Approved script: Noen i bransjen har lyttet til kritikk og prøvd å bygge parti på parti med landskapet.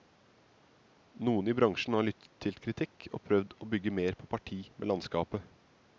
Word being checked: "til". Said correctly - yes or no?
yes